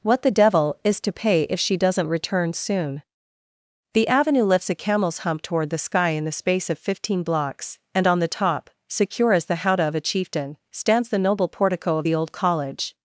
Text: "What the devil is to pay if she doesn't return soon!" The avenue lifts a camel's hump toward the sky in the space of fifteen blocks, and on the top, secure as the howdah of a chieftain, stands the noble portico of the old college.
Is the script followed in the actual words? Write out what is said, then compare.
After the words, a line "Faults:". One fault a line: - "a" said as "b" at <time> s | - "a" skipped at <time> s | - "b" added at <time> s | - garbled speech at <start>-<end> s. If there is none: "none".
"What the devil is to pay if she doesn't return soon!" The avenue lifts a camel's hump toward the sky in the space of fifteen blocks, and on the top, secure as the howdah of a chieftain, stands the noble portico of the old college.
Faults:
none